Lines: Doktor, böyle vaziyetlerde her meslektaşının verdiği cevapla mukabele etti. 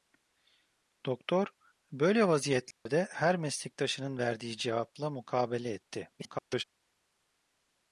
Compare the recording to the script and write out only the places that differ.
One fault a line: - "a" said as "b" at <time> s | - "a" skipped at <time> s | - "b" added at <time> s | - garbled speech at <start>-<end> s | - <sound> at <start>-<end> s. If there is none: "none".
- dropout at 2.7-2.9 s
- garbled speech at 6.2-6.6 s